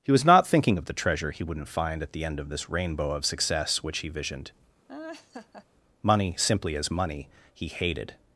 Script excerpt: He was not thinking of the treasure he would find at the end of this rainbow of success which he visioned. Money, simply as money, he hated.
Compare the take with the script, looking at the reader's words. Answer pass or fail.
fail